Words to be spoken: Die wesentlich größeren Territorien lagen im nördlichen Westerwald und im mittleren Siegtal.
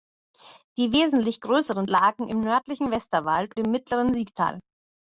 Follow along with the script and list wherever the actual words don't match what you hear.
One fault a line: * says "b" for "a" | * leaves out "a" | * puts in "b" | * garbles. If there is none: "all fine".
* leaves out "Territorien"
* leaves out "und"